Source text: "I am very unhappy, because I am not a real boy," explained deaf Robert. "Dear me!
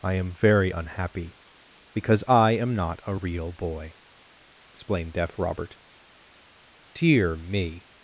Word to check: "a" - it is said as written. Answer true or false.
true